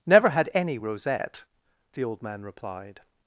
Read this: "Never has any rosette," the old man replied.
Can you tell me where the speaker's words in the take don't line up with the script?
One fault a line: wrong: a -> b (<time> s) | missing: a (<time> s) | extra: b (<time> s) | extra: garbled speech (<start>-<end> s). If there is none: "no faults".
wrong: has -> had (0.3 s)